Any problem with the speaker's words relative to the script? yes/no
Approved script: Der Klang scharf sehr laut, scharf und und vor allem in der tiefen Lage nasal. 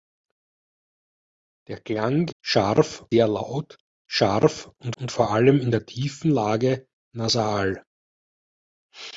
no